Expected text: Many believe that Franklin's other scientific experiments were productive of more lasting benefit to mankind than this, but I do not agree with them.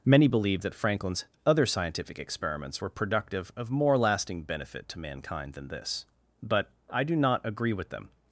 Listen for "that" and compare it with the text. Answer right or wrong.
right